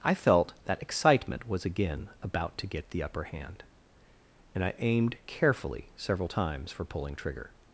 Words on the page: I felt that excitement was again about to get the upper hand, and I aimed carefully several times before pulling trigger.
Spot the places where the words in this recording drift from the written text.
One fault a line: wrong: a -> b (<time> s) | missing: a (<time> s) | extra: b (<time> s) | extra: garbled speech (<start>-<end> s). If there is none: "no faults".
wrong: before -> for (6.7 s)